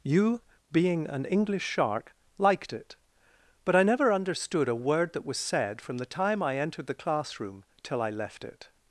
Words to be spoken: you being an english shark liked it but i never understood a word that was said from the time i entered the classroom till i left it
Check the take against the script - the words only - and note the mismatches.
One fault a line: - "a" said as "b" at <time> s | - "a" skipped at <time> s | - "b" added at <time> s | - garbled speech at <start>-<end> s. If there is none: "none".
none